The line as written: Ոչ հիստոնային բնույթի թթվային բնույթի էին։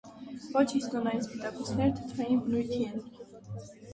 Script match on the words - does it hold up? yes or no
no